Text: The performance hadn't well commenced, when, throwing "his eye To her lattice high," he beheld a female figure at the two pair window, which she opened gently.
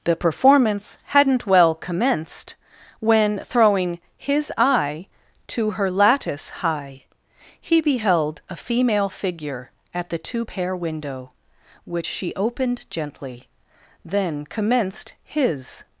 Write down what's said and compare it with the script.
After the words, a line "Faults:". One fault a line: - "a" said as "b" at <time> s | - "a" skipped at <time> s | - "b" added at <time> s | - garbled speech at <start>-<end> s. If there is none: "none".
The performance hadn't well commenced, when, throwing "his eye To her lattice high," he beheld a female figure at the two pair window, which she opened gently. Then commenced his
Faults:
- "Then commenced his" added at 14.0 s